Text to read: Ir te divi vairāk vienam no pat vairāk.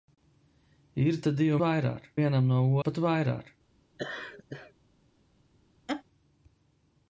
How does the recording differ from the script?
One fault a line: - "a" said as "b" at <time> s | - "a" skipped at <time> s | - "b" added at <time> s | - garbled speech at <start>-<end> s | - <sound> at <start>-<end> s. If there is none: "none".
- laugh at 4.0-4.7 s
- laugh at 5.9-6.0 s